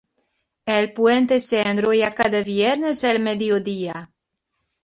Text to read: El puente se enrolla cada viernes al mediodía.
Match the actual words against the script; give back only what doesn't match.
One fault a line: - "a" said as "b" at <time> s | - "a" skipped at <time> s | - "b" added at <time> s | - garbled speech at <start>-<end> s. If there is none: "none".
none